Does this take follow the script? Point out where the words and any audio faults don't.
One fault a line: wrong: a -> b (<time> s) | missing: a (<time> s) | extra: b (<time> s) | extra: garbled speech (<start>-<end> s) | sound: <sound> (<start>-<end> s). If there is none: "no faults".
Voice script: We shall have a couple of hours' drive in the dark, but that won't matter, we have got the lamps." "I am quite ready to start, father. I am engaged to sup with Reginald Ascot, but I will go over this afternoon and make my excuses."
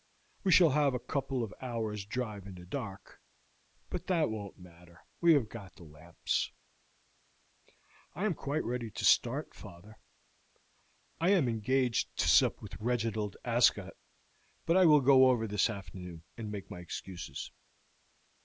no faults